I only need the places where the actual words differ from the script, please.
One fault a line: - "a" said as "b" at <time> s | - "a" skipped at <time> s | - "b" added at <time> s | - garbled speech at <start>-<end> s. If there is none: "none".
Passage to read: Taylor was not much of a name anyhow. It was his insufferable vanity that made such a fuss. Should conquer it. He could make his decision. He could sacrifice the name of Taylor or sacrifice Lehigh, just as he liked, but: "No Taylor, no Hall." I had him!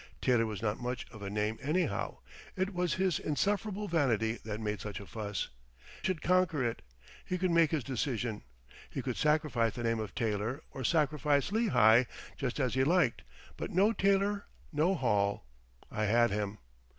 none